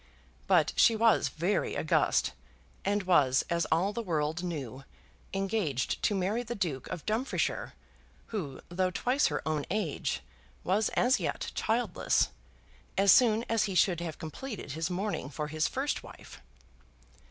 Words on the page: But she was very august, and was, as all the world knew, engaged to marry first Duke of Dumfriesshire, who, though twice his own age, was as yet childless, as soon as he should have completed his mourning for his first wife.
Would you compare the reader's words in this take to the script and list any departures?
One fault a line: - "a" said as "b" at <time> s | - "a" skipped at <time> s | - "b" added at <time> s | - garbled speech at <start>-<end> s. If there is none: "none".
- "first" said as "the" at 6.4 s
- "his" said as "her" at 9.3 s